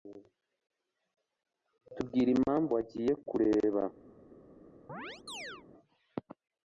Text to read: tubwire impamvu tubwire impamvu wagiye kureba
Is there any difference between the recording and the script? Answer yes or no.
yes